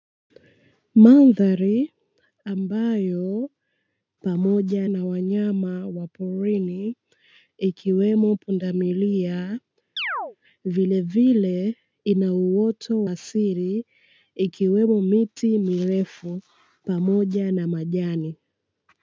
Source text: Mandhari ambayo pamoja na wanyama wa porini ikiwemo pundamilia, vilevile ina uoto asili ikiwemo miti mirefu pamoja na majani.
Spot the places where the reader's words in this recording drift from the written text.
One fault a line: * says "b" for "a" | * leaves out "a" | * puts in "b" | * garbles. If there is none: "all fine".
all fine